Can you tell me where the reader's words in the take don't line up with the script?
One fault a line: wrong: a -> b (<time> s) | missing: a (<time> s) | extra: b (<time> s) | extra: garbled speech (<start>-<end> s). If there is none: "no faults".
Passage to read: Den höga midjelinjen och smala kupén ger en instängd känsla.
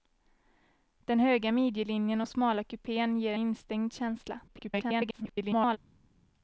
missing: en (3.3 s)
extra: garbled speech (4.5-5.8 s)